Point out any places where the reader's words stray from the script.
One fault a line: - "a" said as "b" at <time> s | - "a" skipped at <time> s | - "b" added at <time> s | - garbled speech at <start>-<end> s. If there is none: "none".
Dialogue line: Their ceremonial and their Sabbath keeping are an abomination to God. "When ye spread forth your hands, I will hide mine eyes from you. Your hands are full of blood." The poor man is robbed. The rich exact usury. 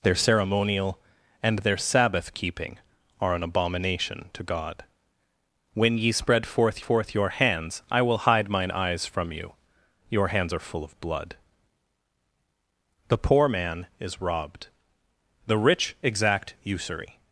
- "forth" added at 6.8 s